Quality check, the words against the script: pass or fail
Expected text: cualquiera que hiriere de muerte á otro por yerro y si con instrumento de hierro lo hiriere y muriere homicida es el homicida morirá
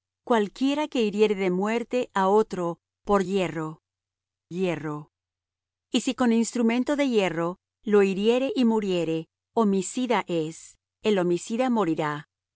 fail